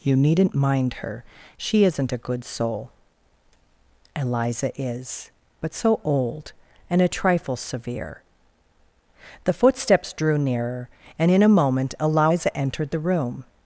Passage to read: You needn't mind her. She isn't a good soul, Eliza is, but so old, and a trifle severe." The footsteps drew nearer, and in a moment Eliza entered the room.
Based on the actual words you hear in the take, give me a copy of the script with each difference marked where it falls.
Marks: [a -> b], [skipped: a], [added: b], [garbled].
You needn't mind her. She isn't a good soul, Eliza is, but so old, and a trifle severe." The footsteps drew nearer, and in a moment Eliza entered the room.